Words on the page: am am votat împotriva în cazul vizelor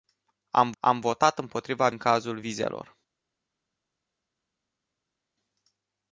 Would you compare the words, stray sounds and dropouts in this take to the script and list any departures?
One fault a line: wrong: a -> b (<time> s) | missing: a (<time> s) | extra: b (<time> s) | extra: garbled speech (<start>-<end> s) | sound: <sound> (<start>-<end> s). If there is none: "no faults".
no faults